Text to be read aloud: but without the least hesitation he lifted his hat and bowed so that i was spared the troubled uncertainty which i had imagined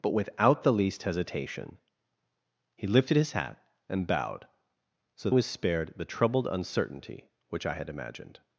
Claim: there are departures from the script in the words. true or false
true